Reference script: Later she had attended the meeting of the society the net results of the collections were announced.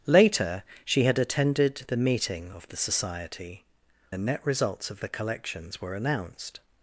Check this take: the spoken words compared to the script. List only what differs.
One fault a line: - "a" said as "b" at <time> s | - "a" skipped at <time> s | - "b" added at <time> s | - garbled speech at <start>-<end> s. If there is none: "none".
none